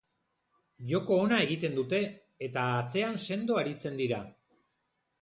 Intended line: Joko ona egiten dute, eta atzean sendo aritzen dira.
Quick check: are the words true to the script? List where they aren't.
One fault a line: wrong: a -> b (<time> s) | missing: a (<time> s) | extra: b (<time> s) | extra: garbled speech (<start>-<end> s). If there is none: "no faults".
no faults